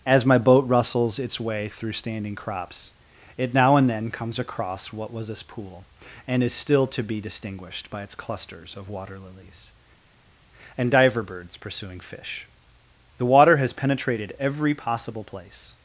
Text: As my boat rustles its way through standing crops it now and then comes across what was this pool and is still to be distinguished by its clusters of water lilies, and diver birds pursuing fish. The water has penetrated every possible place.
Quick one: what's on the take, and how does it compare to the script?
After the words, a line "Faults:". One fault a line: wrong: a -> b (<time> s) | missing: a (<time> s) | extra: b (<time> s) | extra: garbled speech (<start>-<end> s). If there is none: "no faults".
As my boat rustles its way through standing crops it now and then comes across what was this pool and is still to be distinguished by its clusters of water lilies, and diver birds pursuing fish. The water has penetrated every possible place.
Faults:
no faults